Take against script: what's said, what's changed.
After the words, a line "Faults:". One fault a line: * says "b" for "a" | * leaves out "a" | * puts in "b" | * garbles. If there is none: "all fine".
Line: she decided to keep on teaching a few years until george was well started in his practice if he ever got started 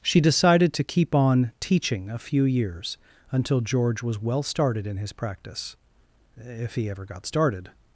she decided to keep on teaching a few years until george was well started in his practice if he ever got started
Faults:
all fine